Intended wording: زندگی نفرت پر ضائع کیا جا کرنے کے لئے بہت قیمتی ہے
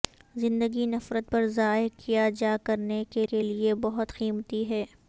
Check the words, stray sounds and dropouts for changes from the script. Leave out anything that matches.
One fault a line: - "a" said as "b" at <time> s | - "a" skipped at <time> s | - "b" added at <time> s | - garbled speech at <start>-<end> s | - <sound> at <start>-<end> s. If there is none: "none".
- "کے" added at 3.3 s